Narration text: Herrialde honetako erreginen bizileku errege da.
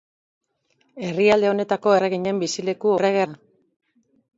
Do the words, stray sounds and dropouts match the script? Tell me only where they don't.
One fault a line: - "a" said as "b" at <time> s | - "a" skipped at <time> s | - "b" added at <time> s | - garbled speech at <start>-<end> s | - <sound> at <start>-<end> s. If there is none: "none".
none